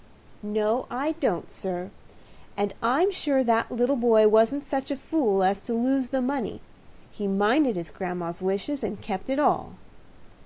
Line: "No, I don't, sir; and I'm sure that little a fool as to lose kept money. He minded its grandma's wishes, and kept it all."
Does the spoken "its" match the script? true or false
false